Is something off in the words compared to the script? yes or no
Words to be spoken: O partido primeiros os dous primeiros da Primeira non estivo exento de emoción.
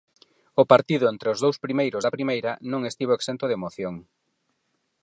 yes